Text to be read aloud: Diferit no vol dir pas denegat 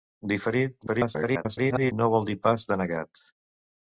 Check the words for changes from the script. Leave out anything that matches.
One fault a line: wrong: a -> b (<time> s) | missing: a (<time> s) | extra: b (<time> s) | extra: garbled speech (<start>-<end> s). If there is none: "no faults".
extra: garbled speech (0.9-1.9 s)